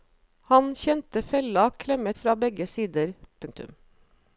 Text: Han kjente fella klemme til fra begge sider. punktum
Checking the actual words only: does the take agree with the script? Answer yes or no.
no